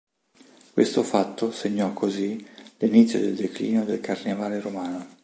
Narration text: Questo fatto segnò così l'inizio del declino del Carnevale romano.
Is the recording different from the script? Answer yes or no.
no